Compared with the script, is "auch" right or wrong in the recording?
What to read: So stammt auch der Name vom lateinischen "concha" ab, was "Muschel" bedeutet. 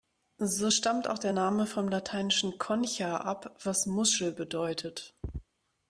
right